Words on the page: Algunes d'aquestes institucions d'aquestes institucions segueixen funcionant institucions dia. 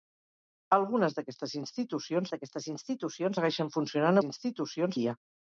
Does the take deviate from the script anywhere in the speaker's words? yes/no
no